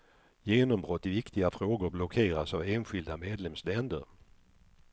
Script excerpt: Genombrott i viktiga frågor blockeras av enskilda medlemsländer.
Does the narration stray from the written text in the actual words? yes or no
no